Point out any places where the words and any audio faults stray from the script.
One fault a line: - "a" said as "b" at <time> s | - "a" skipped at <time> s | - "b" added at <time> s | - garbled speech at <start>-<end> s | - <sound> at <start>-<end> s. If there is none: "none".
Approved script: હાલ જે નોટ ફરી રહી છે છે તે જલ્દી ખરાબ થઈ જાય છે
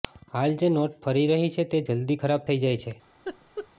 - "છે" skipped at 1.7 s
- laugh at 3.2-3.7 s